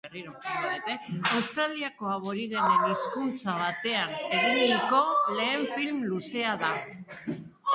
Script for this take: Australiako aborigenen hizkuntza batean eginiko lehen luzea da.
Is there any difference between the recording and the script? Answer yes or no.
yes